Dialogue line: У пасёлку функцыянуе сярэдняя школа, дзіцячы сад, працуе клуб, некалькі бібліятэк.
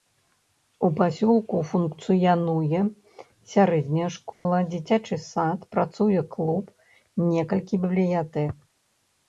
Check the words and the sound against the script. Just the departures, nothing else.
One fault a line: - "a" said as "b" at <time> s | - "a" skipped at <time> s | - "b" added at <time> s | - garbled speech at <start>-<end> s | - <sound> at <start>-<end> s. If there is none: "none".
- dropout at 4.3-4.5 s